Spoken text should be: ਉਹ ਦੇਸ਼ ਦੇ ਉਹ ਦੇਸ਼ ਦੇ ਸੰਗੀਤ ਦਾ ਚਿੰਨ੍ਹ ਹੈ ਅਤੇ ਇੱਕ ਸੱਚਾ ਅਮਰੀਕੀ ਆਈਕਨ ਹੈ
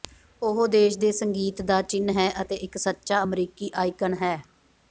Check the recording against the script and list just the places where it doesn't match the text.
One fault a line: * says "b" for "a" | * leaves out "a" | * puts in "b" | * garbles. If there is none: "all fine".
* leaves out "ਉਹ ਦੇਸ਼ ਦੇ"